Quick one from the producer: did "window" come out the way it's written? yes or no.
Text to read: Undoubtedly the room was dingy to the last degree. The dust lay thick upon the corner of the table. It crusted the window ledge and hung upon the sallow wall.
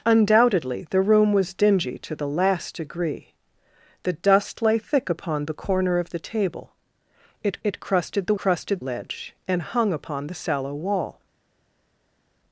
no